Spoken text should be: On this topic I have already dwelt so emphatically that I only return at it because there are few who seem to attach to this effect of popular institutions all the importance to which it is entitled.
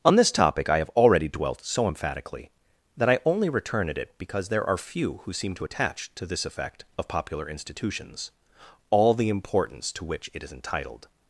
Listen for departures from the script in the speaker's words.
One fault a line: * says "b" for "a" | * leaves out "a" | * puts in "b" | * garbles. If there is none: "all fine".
all fine